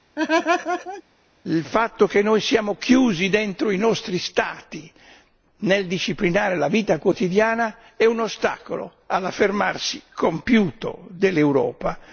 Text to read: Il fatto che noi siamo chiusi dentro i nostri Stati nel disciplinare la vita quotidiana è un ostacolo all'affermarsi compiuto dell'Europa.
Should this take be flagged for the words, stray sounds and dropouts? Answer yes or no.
yes